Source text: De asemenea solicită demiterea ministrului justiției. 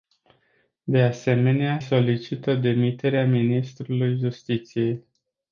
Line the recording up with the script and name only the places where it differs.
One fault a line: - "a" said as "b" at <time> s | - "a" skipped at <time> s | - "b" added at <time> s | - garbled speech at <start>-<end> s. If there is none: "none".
none